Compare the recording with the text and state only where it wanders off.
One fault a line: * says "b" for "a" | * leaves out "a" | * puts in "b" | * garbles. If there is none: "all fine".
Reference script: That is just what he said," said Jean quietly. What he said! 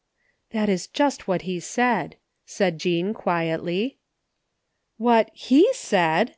all fine